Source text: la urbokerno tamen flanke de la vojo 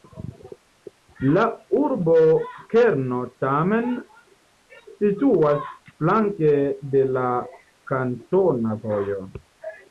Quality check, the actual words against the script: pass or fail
fail